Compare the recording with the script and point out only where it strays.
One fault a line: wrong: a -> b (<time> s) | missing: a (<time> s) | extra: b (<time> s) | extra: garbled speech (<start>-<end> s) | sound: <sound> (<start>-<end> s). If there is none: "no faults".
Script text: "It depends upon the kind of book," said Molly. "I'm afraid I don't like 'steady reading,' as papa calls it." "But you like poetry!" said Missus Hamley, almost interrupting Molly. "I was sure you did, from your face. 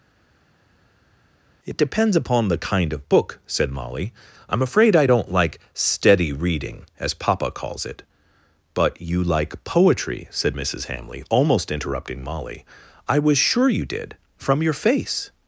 no faults